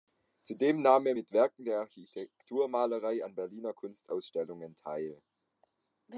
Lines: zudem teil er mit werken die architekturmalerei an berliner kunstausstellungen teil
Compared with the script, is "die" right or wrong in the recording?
wrong